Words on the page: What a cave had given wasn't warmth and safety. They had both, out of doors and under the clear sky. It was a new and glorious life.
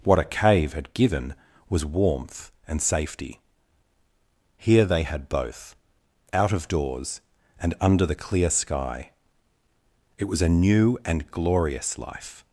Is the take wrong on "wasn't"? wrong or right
wrong